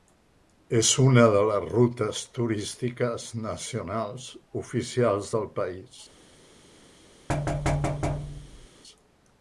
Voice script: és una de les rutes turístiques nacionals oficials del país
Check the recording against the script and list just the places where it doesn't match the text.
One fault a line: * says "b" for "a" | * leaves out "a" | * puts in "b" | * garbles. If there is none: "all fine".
all fine